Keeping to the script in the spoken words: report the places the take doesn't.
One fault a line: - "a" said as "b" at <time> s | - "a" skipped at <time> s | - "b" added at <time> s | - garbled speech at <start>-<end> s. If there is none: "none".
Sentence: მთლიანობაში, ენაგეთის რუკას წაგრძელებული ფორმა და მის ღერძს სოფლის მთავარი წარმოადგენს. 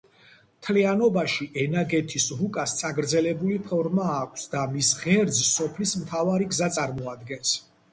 - "აქვს" added at 4.2 s
- "გზა" added at 6.5 s